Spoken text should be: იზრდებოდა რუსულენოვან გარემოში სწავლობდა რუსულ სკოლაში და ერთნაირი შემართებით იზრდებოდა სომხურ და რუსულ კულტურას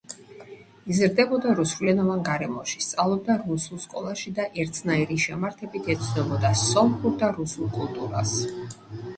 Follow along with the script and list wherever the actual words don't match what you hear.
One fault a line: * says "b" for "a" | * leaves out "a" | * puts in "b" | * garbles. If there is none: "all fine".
* says "ეცნობოდა" for "იზრდებოდა"